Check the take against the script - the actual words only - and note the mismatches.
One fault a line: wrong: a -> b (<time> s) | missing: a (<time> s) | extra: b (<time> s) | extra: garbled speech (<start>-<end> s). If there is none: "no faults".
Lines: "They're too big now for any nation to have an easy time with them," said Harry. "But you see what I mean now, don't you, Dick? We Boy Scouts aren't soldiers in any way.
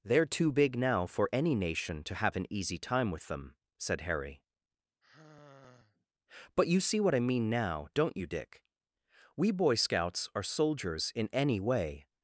wrong: aren't -> are (10.3 s)